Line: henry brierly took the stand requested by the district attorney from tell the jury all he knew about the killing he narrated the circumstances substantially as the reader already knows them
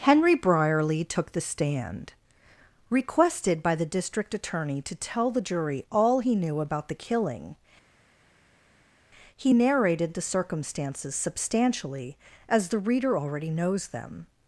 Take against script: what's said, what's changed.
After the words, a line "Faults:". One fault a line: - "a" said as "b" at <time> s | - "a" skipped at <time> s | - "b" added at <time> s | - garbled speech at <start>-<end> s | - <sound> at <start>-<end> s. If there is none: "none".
henry brierly took the stand requested by the district attorney to tell the jury all he knew about the killing he narrated the circumstances substantially as the reader already knows them
Faults:
- "from" said as "to" at 4.8 s